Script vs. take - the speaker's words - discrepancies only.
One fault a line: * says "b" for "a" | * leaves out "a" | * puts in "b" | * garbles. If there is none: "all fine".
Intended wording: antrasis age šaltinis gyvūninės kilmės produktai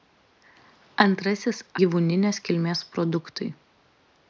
* leaves out "age šaltinis"